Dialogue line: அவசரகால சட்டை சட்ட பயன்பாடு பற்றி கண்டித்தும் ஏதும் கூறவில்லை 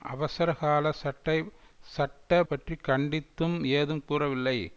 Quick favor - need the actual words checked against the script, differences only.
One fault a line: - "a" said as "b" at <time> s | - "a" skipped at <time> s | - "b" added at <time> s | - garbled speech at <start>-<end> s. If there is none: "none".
- "பயன்பாடு" skipped at 2.4 s